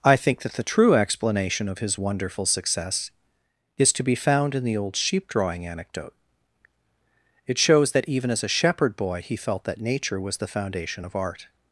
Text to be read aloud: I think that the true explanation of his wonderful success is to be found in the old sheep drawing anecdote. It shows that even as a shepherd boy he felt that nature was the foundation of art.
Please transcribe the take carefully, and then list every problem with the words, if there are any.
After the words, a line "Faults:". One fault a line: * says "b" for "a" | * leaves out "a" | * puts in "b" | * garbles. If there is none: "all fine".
I think that the true explanation of his wonderful success is to be found in the old sheep drawing anecdote. It shows that even as a shepherd boy he felt that nature was the foundation of art.
Faults:
all fine